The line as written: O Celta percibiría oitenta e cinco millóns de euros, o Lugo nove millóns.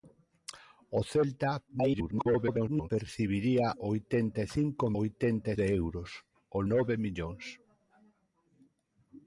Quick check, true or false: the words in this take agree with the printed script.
false